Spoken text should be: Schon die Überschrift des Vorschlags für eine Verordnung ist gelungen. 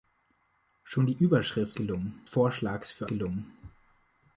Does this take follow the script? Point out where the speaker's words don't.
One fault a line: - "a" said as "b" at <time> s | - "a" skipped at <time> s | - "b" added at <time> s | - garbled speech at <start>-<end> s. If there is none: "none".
- "des" said as "gelungen" at 1.7 s
- "eine Verordnung ist" skipped at 3.1 s